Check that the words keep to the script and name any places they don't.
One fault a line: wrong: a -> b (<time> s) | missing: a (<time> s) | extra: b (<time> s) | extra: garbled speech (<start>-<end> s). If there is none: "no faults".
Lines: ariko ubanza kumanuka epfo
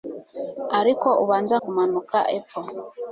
no faults